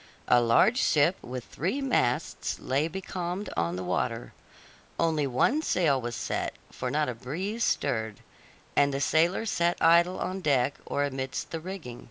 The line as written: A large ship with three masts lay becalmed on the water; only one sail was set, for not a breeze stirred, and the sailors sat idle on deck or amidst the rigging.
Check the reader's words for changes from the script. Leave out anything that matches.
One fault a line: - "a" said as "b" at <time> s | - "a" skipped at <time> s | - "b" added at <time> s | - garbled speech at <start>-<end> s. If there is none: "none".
none